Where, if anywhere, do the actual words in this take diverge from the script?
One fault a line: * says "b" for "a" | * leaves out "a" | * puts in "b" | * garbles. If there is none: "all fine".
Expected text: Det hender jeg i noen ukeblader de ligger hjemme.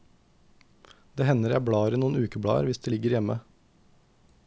* puts in "blar"
* puts in "hvis"